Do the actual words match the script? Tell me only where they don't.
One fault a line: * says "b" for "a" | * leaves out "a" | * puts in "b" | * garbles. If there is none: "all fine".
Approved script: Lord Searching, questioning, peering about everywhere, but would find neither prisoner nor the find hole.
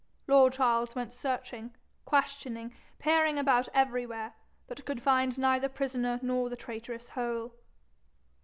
* puts in "Charles went"
* says "could" for "would"
* says "traitorous" for "find"